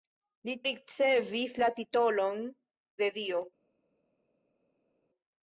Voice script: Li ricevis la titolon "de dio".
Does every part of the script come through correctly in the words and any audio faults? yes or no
yes